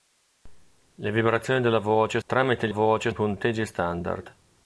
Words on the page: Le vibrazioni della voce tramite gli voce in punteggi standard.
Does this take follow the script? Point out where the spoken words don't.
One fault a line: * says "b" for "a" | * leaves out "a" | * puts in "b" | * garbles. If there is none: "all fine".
all fine